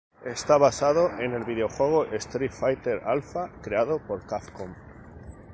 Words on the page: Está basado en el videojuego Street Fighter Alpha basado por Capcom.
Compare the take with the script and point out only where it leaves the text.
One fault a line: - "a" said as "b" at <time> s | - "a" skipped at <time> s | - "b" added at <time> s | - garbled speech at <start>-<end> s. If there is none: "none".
- "basado" said as "creado" at 3.6 s